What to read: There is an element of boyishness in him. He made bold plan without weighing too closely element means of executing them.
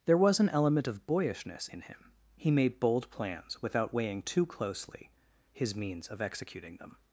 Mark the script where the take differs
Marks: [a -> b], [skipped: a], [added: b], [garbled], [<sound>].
There [is -> was] an element of boyishness in him. He made bold [plan -> plans] without weighing too closely [element -> his] means of executing them.